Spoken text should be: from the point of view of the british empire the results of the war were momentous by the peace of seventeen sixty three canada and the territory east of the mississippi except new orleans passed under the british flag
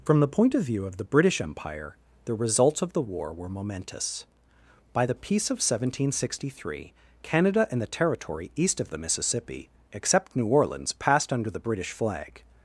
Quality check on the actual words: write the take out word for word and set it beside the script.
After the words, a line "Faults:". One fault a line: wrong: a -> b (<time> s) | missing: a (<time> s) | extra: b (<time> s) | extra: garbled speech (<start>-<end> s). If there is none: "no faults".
from the point of view of the british empire the results of the war were momentous by the peace of seventeen sixty three canada and the territory east of the mississippi except new orleans passed under the british flag
Faults:
no faults